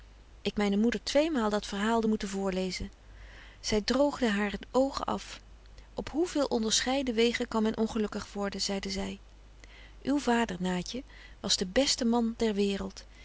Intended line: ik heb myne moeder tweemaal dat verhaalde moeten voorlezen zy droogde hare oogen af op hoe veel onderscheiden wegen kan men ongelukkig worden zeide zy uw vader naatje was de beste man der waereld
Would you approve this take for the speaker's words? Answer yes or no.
no